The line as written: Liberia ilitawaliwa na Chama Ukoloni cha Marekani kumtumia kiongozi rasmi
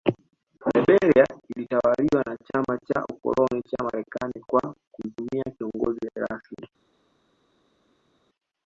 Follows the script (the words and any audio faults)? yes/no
no